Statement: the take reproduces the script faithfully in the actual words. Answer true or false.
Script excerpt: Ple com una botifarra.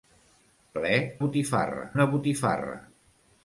false